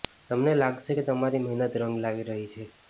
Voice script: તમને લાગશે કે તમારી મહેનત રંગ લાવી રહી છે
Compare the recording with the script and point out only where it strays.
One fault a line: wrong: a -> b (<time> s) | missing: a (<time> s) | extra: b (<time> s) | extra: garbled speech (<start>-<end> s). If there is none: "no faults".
no faults